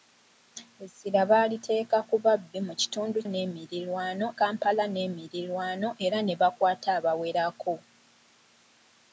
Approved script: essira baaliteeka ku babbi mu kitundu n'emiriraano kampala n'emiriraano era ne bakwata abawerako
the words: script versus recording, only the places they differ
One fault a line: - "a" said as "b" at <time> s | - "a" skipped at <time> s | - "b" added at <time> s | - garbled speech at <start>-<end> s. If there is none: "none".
none